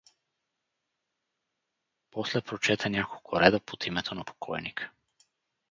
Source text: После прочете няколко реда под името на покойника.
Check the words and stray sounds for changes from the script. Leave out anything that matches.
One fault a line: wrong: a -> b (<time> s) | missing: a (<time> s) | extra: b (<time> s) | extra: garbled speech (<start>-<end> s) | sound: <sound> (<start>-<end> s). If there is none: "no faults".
no faults